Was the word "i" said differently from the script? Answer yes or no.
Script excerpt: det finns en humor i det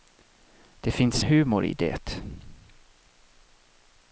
no